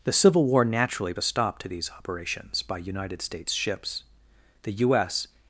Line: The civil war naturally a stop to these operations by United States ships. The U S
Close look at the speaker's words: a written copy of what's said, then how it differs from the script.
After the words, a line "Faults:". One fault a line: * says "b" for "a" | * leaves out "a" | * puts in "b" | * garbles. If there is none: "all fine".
The civil war naturally a stop to these operations by United States ships. The U S
Faults:
all fine